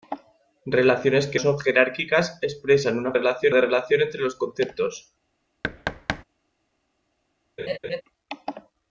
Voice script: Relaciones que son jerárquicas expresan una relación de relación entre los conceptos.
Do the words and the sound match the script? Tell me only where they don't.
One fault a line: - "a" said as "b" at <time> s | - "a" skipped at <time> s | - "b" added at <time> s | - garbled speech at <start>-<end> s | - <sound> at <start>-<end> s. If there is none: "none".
- thud at 5.6-6.2 s
- laugh at 7.6-8.0 s